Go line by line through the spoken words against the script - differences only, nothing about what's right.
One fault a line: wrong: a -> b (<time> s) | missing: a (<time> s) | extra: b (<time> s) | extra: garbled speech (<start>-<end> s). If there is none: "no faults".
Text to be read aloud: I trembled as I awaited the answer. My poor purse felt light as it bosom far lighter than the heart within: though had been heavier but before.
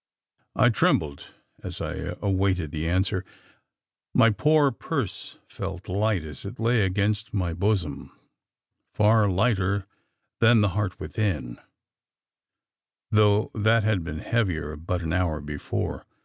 extra: lay against my (6.6 s)
extra: that (13.6 s)
extra: an hour (15.0 s)